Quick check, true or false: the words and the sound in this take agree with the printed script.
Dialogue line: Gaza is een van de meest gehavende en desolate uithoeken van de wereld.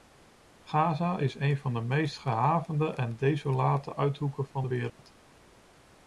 false